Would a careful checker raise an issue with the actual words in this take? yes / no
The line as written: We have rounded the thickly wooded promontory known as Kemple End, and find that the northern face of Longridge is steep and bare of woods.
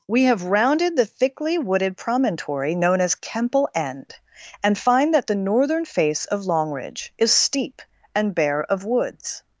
no